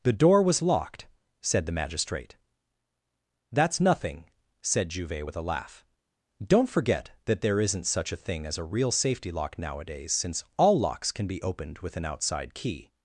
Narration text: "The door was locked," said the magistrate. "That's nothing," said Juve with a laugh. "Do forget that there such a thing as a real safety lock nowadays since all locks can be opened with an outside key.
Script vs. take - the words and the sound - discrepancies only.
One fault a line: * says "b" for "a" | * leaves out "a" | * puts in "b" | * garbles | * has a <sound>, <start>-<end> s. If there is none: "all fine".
* says "Don't" for "Do"
* puts in "isn't"